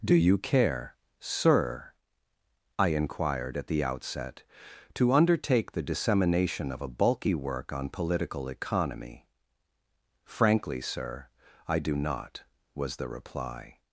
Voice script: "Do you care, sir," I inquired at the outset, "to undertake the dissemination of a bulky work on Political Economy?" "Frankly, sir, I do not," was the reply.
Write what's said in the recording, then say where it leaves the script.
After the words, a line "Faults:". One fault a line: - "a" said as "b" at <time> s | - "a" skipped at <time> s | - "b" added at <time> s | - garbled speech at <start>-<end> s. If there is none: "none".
"Do you care, sir," I inquired at the outset, "to undertake the dissemination of a bulky work on Political Economy?" "Frankly, sir, I do not," was the reply.
Faults:
none